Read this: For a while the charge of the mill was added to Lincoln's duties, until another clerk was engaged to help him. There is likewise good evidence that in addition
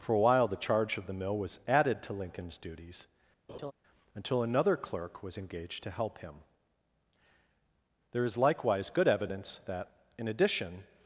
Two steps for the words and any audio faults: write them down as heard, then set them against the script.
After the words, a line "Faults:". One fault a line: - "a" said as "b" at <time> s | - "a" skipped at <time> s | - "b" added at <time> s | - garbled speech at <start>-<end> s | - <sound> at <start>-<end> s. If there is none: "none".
For a while the charge of the mill was added to Lincoln's duties, until another clerk was engaged to help him. There is likewise good evidence that in addition
Faults:
- laugh at 3.5-3.7 s